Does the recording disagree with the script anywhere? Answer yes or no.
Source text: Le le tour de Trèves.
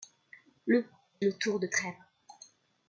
no